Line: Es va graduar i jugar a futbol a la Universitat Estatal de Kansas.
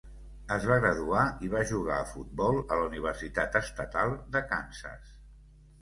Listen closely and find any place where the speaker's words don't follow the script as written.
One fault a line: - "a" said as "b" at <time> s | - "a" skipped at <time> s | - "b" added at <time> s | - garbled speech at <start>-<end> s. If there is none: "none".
- "va" added at 1.5 s